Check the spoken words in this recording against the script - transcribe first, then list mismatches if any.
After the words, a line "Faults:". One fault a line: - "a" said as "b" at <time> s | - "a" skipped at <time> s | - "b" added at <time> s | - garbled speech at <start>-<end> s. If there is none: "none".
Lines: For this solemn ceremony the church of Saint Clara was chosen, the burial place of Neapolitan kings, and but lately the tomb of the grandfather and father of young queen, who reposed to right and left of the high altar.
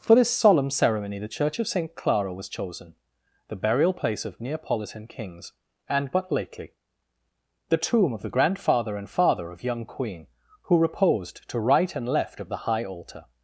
For this solemn ceremony the church of Saint Clara was chosen, the burial place of Neapolitan kings, and but lately the tomb of the grandfather and father of young queen, who reposed to right and left of the high altar.
Faults:
none